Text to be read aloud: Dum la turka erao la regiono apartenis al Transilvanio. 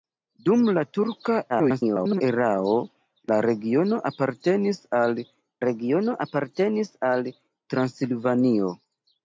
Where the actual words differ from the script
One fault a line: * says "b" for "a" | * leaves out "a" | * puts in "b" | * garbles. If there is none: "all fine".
* garbles
* puts in "regiono apartenis al"